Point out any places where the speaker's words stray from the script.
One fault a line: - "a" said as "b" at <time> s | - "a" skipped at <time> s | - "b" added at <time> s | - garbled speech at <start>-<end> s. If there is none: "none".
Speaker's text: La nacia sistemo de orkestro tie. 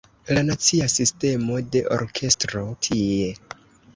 none